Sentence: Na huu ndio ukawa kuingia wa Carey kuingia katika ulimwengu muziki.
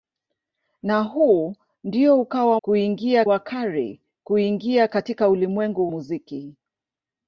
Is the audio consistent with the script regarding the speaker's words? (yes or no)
yes